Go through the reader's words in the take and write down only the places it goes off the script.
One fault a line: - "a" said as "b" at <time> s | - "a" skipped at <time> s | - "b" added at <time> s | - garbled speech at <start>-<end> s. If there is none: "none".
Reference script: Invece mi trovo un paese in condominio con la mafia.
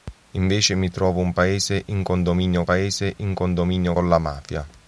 - "paese in condominio" added at 2.6 s